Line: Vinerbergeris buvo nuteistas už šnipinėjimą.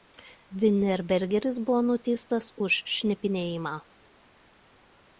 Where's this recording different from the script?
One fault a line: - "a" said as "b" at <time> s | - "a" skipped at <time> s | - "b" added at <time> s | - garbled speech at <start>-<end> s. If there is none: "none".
none